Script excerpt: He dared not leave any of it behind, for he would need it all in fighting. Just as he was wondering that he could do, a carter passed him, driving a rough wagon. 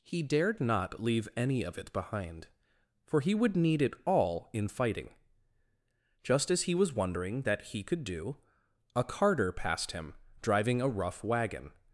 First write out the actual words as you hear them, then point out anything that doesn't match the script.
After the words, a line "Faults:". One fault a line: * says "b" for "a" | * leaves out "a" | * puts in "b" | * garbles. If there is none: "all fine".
He dared not leave any of it behind, for he would need it all in fighting. Just as he was wondering that he could do, a carter passed him, driving a rough wagon.
Faults:
all fine